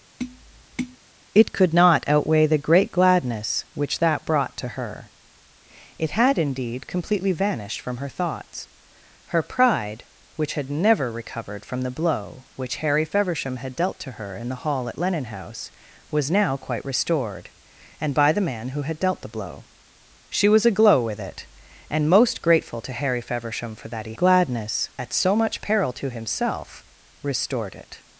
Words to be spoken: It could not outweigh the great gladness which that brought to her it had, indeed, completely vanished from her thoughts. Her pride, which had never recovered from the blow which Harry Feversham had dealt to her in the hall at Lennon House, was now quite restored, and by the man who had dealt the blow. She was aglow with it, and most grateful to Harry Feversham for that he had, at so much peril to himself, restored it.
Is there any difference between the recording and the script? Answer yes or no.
yes